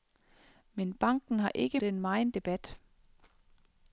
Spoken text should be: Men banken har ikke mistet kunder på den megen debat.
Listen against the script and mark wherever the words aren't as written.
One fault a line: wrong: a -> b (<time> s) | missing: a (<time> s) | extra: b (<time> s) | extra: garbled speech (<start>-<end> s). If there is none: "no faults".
missing: mistet kunder på (1.8 s)